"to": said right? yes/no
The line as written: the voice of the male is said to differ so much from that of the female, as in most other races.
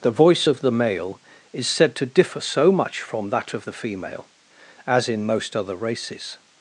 yes